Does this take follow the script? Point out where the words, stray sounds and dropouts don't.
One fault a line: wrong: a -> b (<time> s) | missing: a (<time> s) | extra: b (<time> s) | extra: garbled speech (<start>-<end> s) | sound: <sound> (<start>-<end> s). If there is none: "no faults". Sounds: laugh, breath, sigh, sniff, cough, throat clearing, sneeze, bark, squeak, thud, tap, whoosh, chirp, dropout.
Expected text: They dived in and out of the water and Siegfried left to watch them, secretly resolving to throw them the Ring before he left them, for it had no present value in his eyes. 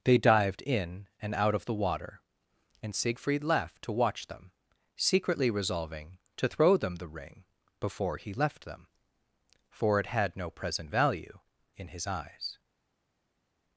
no faults